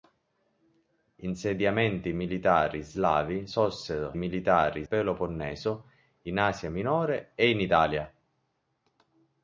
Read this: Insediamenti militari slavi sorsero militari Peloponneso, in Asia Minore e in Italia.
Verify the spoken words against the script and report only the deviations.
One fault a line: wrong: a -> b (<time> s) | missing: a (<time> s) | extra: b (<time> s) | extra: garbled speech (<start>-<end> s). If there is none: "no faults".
no faults